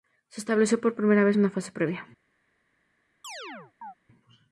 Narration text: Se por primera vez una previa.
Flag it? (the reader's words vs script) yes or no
yes